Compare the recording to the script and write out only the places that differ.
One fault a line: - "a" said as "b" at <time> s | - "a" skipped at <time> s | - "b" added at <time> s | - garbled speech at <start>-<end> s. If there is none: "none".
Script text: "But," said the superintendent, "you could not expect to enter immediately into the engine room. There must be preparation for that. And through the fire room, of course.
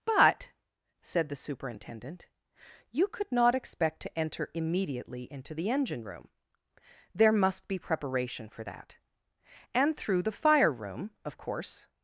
none